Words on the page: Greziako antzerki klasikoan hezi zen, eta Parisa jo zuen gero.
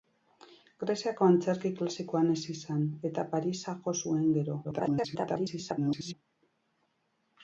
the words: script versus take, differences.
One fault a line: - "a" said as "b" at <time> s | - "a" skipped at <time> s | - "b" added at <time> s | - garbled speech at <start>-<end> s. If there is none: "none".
- garbled speech at 4.6-6.1 s